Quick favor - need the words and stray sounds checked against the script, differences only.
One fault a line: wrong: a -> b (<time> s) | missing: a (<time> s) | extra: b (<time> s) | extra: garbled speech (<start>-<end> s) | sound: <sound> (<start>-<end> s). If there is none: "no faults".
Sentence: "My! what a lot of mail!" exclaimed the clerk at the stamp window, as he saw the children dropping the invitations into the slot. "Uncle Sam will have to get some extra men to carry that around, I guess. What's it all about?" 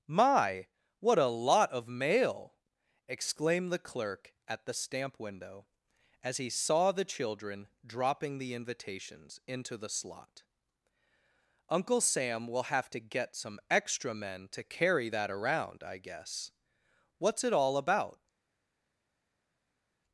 no faults